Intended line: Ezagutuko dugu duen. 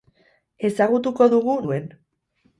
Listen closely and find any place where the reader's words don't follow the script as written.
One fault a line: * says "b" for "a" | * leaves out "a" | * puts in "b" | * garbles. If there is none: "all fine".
all fine